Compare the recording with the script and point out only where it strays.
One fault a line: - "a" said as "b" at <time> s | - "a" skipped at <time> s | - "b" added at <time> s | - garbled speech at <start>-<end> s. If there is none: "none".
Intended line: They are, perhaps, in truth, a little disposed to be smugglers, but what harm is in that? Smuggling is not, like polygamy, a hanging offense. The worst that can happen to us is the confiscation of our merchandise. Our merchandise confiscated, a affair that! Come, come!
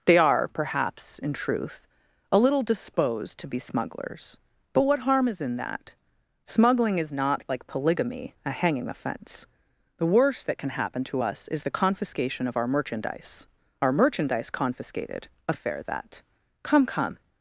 none